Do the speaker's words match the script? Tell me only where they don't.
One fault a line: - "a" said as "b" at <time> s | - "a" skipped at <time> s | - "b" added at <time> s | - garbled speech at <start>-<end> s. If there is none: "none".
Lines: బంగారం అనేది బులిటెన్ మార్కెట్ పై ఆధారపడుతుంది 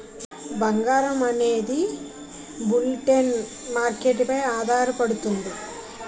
none